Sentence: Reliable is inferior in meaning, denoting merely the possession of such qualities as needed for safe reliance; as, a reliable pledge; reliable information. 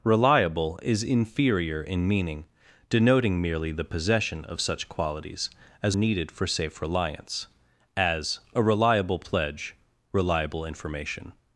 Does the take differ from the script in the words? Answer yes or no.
no